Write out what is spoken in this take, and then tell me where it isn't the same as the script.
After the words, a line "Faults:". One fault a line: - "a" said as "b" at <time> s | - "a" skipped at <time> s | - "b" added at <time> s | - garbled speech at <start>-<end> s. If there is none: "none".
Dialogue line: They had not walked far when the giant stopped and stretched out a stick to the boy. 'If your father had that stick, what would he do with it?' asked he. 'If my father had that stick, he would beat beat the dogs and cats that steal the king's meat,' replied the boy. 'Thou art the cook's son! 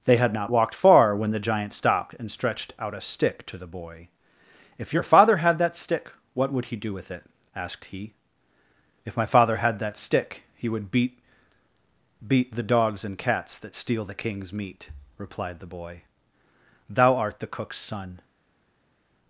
They had not walked far when the giant stopped and stretched out a stick to the boy. 'If your father had that stick, what would he do with it?' asked he. 'If my father had that stick, he would beat beat the dogs and cats that steal the king's meat,' replied the boy. 'Thou art the cook's son!
Faults:
none